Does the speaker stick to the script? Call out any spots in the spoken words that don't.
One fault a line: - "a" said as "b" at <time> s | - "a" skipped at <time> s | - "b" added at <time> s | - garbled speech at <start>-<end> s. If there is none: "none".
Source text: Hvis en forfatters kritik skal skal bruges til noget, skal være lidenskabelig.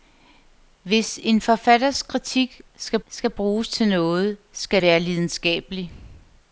none